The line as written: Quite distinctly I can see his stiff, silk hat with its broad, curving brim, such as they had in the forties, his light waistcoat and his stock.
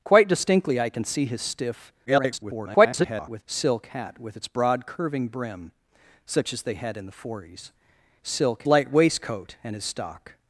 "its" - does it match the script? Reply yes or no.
yes